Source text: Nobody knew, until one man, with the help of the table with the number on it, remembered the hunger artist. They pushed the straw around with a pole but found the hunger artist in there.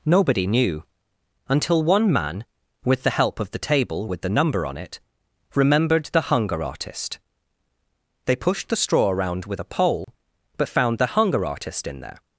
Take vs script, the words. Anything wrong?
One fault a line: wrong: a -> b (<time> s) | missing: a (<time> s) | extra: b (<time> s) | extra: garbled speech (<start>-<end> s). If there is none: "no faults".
no faults